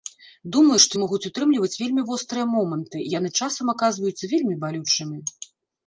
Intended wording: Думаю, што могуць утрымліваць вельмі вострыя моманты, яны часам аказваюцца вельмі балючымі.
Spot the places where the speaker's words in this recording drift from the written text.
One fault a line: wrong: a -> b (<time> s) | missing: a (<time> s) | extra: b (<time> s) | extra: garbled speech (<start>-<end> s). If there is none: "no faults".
no faults